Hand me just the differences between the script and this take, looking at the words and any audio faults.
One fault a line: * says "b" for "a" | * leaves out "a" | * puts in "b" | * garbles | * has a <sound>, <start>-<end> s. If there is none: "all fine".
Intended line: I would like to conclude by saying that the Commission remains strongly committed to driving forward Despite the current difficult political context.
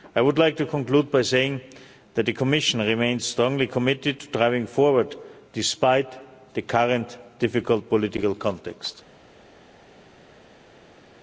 all fine